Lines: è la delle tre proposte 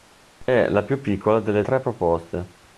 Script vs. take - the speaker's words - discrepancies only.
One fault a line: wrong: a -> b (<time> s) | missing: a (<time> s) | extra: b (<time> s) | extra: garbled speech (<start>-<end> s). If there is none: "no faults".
extra: più piccola (0.8 s)